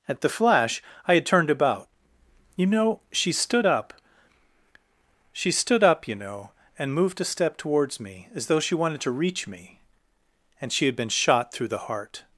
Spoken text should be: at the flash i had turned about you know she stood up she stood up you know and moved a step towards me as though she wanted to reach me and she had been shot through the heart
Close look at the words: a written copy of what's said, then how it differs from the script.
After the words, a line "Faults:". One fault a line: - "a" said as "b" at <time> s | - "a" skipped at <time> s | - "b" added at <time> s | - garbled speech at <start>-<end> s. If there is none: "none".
at the flash i had turned about you know she stood up she stood up you know and moved a step towards me as though she wanted to reach me and she had been shot through the heart
Faults:
none